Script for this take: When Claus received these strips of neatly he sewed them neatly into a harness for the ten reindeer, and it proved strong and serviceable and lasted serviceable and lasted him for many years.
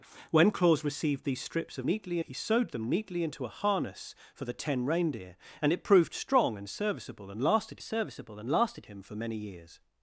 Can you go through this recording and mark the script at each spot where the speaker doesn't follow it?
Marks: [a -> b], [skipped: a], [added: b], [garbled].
When Claus received these strips of neatly he sewed them neatly into a harness for the ten reindeer, and it proved strong and serviceable and lasted serviceable and lasted him for many years.